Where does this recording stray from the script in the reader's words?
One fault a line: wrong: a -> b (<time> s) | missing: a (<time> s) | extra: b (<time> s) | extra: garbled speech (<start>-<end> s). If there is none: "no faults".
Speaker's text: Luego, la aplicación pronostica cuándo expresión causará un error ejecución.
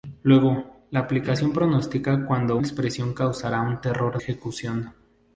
no faults